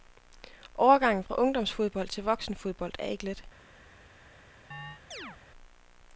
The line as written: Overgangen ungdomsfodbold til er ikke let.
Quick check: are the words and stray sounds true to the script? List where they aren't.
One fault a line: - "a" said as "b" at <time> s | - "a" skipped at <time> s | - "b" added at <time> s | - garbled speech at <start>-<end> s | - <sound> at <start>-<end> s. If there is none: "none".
- "fra" added at 1.2 s
- "voksenfodbold" added at 2.2 s
- chirp at 4.7-5.4 s